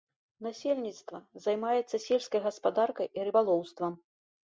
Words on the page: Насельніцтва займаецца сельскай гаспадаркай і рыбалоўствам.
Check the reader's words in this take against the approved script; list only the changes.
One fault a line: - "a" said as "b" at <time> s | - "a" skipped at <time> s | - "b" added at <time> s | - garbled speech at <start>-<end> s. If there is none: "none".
none